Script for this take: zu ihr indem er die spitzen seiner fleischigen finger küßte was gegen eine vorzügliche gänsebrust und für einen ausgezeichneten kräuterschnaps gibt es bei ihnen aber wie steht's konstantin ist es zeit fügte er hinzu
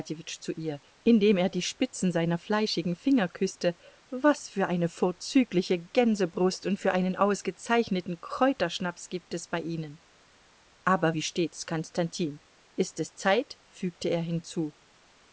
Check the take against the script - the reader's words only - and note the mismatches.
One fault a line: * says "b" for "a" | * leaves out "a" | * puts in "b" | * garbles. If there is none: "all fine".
* says "für" for "gegen"